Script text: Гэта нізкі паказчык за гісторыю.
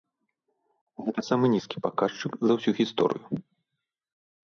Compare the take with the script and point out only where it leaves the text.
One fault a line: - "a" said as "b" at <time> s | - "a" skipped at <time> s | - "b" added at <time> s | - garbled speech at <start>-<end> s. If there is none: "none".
- "самы" added at 1.3 s
- "ўсю" added at 2.6 s